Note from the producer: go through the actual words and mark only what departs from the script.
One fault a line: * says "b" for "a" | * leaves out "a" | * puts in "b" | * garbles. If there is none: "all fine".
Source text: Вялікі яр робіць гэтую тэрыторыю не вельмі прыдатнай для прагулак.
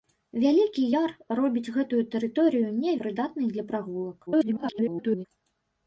* leaves out "вельмі"
* garbles